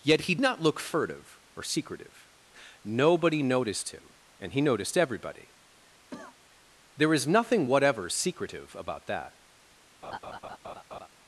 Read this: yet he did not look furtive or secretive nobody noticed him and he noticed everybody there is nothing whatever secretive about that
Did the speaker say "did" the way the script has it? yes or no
no